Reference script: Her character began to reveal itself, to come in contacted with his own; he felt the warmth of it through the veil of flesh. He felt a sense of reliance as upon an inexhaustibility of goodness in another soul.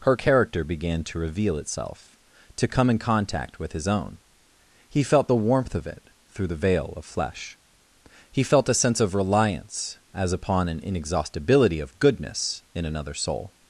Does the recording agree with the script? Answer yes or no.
no